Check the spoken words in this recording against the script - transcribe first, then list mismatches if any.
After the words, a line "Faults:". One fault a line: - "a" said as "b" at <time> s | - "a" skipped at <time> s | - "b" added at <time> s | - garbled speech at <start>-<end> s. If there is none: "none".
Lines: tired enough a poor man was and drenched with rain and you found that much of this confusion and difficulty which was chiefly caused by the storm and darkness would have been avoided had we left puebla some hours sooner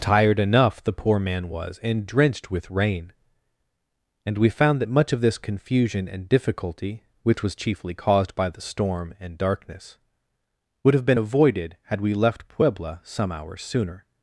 tired enough the poor man was and drenched with rain and we found that much of this confusion and difficulty which was chiefly caused by the storm and darkness would have been avoided had we left puebla some hours sooner
Faults:
- "a" said as "the" at 0.8 s
- "you" said as "we" at 4.3 s